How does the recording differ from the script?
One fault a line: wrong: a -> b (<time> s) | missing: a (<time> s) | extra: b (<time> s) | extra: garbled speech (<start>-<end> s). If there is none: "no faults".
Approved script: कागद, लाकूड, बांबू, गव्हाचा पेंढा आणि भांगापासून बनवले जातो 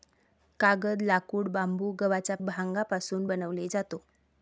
missing: पेंढा आणि (2.4 s)